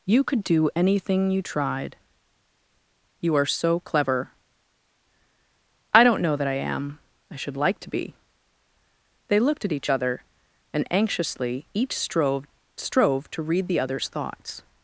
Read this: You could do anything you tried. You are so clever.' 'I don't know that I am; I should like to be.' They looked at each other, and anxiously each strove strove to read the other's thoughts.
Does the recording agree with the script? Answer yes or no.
yes